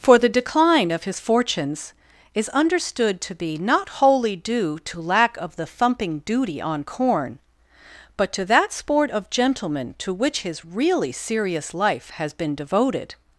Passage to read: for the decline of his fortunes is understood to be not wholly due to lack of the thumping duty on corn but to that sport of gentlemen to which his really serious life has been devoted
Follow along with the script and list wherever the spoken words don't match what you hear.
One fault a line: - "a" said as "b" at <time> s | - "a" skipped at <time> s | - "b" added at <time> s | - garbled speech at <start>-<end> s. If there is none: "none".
none